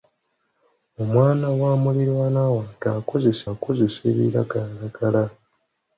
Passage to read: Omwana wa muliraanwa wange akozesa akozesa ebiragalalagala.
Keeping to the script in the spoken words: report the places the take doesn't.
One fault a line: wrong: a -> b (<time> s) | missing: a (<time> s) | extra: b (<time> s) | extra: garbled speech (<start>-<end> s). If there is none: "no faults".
no faults